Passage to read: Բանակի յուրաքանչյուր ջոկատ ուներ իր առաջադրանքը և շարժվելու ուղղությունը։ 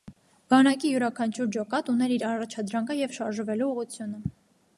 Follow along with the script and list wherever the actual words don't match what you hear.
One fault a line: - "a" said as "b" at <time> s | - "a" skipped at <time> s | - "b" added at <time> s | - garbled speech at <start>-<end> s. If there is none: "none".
none